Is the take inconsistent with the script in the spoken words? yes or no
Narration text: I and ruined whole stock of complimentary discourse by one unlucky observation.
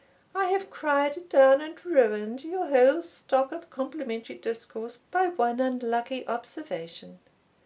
yes